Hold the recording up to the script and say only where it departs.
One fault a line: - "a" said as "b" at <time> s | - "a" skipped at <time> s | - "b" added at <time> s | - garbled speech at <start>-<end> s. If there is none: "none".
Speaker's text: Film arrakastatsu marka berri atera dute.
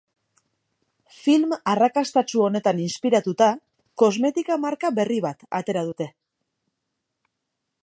- "honetan inspiratuta kosmetika" added at 2.5 s
- "bat" added at 5.3 s